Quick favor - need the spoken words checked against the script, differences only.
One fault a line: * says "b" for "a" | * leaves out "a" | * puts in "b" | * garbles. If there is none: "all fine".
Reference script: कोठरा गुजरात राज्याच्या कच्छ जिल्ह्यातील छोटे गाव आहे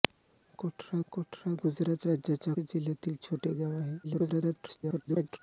* puts in "कोठरा"
* leaves out "कच्छ"
* garbles